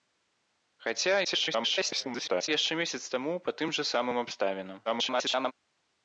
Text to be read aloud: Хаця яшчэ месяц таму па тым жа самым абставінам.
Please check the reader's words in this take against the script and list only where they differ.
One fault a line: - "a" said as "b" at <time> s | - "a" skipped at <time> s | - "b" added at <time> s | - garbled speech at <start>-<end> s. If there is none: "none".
- garbled speech at 1.2-2.5 s
- garbled speech at 4.9-5.5 s